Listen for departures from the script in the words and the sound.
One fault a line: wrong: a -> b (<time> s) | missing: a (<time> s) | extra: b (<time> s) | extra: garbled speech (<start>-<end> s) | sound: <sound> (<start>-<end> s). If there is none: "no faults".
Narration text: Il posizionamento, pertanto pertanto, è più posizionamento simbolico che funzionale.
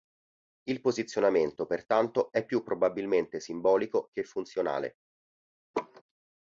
missing: pertanto (2.3 s)
wrong: posizionamento -> probabilmente (2.6 s)
sound: laugh (5.7-6.0 s)